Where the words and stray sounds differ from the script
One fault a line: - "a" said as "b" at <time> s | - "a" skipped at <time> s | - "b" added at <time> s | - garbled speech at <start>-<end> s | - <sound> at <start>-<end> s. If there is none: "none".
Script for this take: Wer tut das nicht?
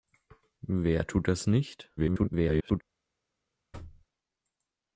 - garbled speech at 2.0-2.8 s
- thud at 3.7-4.1 s